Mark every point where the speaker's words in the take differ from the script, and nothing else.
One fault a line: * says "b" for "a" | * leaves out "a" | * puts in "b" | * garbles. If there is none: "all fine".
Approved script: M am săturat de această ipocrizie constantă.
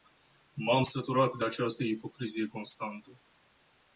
all fine